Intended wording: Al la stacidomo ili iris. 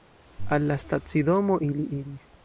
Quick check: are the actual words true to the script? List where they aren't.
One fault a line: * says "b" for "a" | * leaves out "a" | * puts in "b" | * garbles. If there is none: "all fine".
all fine